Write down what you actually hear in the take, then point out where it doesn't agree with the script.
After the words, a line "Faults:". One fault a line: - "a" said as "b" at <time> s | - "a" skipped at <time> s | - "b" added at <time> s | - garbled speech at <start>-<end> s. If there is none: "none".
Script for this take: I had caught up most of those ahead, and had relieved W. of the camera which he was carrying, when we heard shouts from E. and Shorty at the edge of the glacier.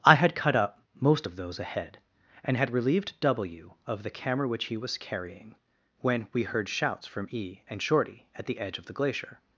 I had cut up most of those ahead, and had relieved W. of the camera which he was carrying, when we heard shouts from E. and Shorty at the edge of the glacier.
Faults:
- "caught" said as "cut" at 0.3 s